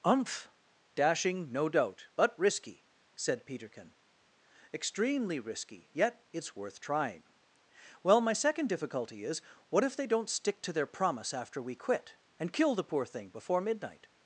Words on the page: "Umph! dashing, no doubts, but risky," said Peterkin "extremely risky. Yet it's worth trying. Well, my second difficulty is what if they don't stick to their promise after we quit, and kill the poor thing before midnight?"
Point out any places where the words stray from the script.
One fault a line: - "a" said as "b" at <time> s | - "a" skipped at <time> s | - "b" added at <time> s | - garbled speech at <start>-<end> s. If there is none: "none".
- "doubts" said as "doubt" at 1.7 s